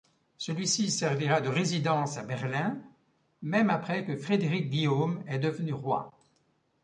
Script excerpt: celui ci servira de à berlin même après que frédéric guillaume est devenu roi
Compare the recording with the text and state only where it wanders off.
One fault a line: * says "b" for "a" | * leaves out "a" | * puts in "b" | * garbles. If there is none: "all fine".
* puts in "résidence"